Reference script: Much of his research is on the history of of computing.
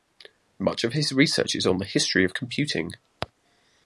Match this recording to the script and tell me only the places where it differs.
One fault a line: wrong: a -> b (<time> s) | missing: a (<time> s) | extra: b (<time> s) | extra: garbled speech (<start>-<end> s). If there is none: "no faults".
missing: of (2.4 s)